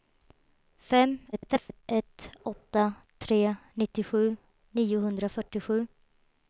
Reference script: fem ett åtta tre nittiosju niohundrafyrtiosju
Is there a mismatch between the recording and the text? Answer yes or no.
yes